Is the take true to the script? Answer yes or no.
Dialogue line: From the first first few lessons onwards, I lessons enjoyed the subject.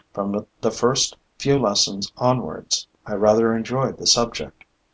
no